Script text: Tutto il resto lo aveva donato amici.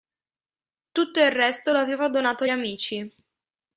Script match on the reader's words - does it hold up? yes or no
yes